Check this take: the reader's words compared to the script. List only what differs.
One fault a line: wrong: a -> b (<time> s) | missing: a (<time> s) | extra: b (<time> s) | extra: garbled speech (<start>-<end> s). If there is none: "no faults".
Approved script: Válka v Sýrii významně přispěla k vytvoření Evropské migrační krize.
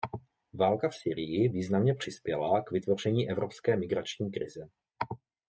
no faults